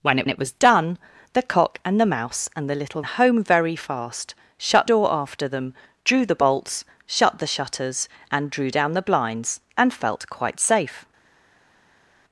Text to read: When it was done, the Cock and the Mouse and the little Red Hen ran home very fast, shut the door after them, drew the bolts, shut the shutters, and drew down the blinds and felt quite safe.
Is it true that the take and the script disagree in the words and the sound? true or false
true